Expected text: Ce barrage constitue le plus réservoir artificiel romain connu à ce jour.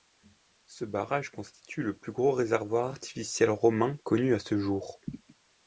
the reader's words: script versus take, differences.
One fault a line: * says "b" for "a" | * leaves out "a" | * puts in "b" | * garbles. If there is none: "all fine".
* puts in "gros"